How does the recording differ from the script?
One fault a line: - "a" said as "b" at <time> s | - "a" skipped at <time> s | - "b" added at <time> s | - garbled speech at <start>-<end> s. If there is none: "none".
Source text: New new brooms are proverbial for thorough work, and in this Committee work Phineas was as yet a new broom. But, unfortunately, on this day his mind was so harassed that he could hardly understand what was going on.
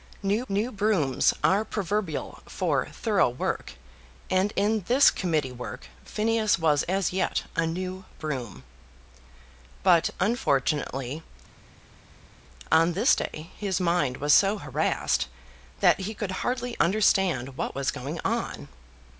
none